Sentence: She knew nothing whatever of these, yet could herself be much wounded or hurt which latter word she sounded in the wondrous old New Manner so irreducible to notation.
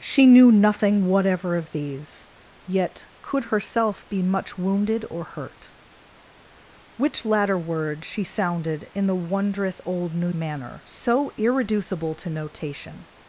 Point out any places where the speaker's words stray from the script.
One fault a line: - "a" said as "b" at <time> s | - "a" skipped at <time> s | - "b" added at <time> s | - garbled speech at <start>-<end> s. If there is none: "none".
none